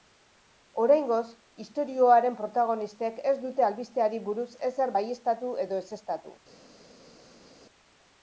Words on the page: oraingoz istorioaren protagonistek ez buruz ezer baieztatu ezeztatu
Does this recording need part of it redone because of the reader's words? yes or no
yes